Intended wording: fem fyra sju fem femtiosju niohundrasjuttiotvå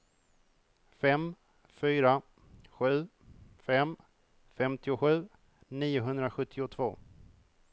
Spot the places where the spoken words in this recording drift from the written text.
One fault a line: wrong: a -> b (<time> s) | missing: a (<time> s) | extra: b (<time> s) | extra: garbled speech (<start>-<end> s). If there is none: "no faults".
no faults